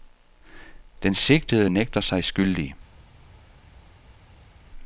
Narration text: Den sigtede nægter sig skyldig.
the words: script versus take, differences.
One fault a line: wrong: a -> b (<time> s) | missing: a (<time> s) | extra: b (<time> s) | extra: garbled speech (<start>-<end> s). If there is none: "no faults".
no faults